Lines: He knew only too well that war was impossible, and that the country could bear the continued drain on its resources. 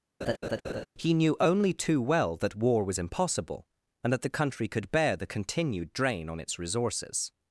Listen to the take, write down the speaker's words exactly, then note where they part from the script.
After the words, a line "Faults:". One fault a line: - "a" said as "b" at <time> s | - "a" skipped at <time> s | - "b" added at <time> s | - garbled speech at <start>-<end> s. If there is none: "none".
He knew only too well that war was impossible, and that the country could bear the continued drain on its resources.
Faults:
none